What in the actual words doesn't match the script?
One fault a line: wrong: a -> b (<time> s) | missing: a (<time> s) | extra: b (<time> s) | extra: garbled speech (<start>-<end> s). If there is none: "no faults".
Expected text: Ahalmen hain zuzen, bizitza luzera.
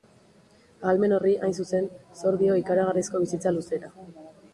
extra: horri (1.2 s)
extra: zor dio ikaragarrizko (2.2 s)